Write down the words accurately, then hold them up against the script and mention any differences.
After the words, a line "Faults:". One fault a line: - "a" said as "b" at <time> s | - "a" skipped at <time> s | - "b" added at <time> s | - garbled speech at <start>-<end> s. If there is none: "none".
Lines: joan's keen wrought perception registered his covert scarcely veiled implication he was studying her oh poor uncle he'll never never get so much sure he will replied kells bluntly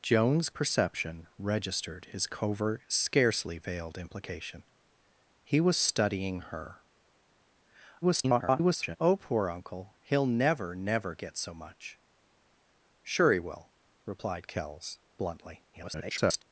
joan's perception registered his covert scarcely veiled implication he was studying her [garbled] oh poor uncle he'll never never get so much sure he will replied kells bluntly [garbled]
Faults:
- "keen wrought" skipped at 0.5 s
- garbled speech at 8.0-9.0 s
- garbled speech at 15.7-16.4 s